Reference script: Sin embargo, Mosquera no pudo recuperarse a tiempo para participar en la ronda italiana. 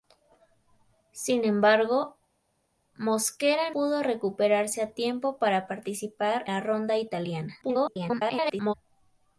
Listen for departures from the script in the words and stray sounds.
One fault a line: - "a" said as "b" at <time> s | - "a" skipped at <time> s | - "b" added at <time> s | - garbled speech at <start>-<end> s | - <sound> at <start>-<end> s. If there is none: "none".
- "no" skipped at 3.7 s
- "en" skipped at 6.4 s
- garbled speech at 7.6-8.7 s